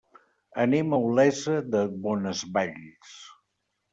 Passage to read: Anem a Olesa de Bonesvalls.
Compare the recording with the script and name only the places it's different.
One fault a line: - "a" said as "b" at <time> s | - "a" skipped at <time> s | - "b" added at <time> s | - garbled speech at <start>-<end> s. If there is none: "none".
none